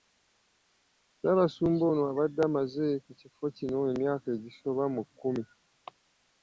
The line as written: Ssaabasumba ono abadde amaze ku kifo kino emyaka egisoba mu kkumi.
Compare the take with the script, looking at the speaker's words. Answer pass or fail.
pass